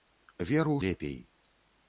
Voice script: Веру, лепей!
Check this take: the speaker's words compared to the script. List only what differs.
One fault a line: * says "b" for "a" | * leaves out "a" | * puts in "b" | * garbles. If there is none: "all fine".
all fine